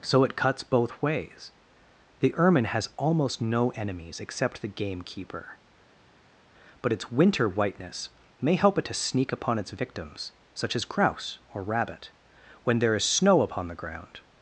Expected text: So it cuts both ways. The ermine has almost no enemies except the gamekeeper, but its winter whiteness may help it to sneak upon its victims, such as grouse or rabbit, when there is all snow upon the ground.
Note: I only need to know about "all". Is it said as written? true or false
false